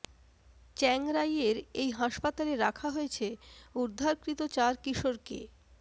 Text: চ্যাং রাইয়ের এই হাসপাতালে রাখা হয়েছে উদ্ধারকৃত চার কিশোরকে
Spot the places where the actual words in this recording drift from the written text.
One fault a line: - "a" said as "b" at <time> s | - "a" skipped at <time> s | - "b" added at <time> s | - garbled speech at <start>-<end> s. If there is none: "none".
none